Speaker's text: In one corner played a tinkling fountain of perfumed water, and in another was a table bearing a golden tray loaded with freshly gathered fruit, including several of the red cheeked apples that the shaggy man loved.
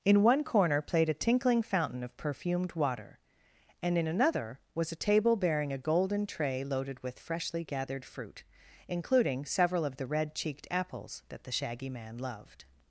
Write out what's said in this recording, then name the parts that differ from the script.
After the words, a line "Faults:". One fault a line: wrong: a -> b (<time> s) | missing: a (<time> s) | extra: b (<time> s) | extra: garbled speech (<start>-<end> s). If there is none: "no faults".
In one corner played a tinkling fountain of perfumed water, and in another was a table bearing a golden tray loaded with freshly gathered fruit, including several of the red cheeked apples that the shaggy man loved.
Faults:
no faults